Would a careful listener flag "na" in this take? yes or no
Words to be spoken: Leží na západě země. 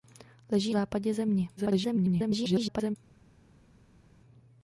yes